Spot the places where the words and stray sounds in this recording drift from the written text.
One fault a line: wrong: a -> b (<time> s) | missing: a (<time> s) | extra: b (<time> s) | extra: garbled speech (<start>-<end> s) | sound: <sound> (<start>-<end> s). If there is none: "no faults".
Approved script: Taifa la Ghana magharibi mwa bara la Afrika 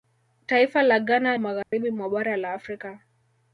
sound: dropout (1.6-1.7 s)